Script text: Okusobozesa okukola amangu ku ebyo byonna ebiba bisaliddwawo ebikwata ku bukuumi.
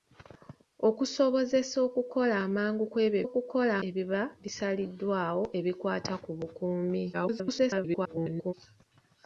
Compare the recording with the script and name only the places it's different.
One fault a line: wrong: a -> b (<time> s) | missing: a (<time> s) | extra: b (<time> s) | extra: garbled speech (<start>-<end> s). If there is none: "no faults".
wrong: byonna -> okukola (3.3 s)
extra: garbled speech (7.1-8.5 s)